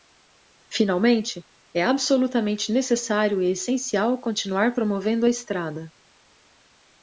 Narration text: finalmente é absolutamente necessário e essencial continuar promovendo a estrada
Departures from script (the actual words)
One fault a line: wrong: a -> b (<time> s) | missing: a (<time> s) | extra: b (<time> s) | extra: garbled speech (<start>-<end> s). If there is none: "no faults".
no faults